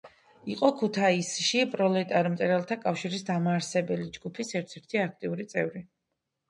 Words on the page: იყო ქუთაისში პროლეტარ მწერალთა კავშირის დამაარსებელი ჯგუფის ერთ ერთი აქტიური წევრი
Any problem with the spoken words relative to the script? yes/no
no